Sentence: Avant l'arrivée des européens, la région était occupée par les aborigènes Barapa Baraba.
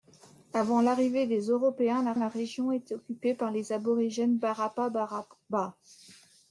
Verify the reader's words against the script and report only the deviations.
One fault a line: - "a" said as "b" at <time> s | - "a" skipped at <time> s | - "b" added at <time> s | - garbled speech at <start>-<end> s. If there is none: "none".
- "la" added at 2.2 s